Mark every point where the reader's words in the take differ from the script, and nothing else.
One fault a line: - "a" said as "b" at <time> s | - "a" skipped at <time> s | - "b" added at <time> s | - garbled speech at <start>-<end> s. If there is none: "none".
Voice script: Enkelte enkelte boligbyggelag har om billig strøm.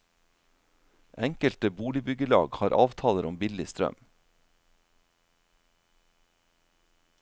- "enkelte" skipped at 1.7 s
- "avtaler" added at 2.8 s